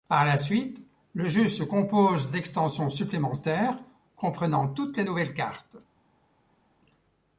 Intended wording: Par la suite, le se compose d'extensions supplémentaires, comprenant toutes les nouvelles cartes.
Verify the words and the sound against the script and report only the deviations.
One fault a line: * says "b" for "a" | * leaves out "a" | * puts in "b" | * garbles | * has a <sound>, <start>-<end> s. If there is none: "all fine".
* puts in "jeu"